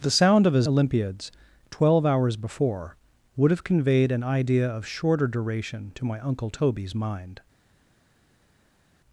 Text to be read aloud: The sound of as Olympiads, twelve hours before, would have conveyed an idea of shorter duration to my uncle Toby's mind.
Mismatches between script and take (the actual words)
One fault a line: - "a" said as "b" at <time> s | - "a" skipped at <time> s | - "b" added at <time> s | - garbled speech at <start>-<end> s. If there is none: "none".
none